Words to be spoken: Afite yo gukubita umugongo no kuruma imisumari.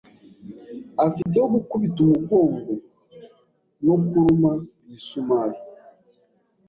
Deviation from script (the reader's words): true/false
false